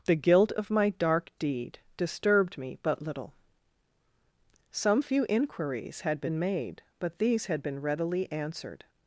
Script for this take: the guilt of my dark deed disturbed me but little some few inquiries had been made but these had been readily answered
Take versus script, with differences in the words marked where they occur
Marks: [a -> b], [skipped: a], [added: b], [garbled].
the guilt of my dark deed disturbed me but little some few inquiries had been made but these had been readily answered